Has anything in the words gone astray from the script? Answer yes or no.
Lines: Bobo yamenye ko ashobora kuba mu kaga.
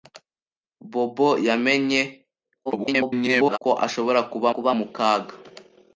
yes